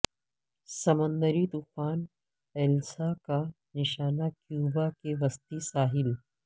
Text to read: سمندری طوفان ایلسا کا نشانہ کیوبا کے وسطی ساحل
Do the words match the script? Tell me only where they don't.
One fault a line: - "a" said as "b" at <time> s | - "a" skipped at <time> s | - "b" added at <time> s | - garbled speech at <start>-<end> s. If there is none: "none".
none